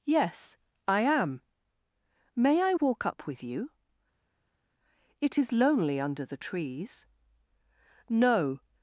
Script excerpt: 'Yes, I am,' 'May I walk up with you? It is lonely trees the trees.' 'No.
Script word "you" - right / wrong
right